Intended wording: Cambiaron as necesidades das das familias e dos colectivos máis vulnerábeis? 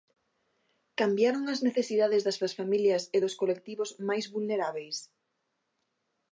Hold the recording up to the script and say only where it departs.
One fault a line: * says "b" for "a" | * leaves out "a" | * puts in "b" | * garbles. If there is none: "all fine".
all fine